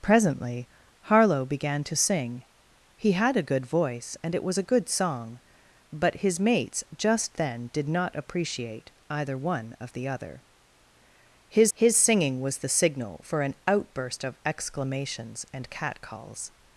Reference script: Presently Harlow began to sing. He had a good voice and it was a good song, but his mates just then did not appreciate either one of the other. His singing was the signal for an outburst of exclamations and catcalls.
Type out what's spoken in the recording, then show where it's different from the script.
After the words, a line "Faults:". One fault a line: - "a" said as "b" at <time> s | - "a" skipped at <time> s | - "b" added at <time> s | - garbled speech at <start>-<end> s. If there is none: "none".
Presently Harlow began to sing. He had a good voice and it was a good song, but his mates just then did not appreciate either one of the other. His his singing was the signal for an outburst of exclamations and catcalls.
Faults:
- "his" added at 11.7 s